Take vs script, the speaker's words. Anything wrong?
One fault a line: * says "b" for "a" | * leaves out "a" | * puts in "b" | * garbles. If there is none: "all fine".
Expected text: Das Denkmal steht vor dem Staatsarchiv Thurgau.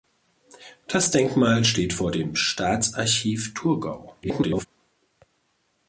* garbles